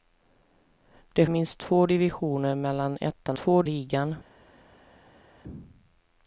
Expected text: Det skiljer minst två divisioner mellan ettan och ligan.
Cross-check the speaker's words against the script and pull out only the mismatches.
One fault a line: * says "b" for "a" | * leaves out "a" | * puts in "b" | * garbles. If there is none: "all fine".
* leaves out "skiljer"
* says "två" for "och"